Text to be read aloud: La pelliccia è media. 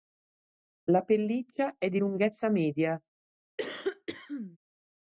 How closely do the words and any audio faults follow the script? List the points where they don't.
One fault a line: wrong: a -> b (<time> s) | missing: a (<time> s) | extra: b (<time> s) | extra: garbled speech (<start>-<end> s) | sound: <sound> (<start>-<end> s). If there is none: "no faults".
extra: di lunghezza (1.9 s)
sound: cough (3.6-4.6 s)